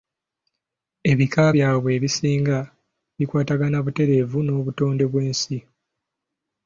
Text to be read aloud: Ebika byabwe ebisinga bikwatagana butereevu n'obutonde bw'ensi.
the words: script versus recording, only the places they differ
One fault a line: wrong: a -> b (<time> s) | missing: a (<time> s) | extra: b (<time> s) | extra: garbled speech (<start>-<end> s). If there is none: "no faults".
no faults